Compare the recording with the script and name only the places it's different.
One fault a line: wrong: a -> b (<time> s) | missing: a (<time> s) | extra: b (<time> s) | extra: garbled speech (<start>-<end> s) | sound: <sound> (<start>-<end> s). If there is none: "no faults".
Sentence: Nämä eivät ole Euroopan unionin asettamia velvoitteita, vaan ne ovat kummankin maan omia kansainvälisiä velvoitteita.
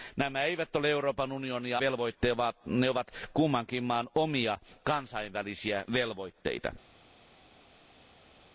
missing: asettamia (1.8 s)